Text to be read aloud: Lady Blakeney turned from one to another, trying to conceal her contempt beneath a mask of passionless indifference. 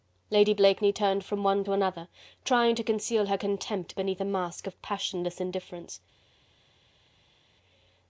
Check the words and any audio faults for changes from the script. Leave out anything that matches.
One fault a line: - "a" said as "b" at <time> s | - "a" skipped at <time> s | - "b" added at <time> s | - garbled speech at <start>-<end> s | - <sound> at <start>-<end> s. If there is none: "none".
none